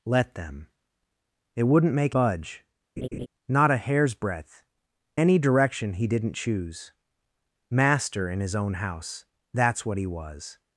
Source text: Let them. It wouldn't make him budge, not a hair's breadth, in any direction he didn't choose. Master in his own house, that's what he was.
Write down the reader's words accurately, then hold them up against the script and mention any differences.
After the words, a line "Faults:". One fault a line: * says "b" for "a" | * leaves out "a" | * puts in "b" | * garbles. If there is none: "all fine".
Let them. It wouldn't make budge, not a hair's breadth, any direction he didn't choose. Master in his own house, that's what he was.
Faults:
* leaves out "him"
* leaves out "in"